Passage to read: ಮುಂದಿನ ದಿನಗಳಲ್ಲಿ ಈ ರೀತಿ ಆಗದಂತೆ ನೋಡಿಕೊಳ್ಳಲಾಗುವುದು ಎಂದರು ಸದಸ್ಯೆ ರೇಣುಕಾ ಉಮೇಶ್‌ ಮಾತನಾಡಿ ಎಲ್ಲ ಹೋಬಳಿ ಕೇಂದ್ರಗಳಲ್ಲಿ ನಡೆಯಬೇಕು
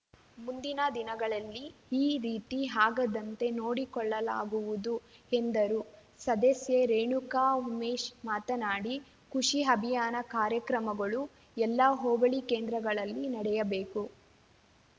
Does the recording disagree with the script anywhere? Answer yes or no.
yes